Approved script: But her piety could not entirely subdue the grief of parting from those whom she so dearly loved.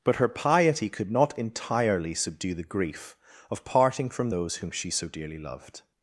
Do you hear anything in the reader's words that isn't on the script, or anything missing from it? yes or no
no